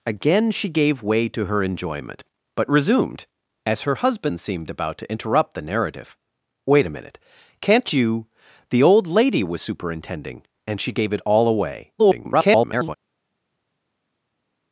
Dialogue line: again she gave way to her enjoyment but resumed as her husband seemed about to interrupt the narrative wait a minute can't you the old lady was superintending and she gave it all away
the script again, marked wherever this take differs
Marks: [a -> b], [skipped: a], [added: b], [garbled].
again she gave way to her enjoyment but resumed as her husband seemed about to interrupt the narrative wait a minute can't you the old lady was superintending and she gave it all away [garbled]